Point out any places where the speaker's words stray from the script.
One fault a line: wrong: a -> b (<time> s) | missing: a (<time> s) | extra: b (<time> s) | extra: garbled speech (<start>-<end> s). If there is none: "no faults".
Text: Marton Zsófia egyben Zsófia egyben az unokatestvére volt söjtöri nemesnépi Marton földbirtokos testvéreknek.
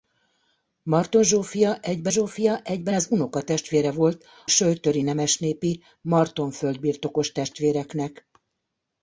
no faults